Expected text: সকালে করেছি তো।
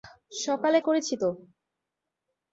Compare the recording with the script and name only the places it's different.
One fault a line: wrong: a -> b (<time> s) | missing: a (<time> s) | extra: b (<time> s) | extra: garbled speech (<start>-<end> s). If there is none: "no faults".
no faults